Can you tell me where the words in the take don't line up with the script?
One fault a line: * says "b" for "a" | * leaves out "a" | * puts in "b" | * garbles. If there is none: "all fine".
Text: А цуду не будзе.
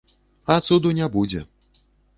all fine